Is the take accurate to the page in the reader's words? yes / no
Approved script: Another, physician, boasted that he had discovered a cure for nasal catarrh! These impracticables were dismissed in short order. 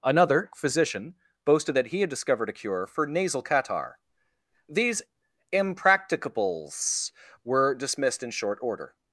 yes